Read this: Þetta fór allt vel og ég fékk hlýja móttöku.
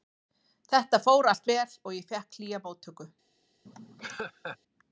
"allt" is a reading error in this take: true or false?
false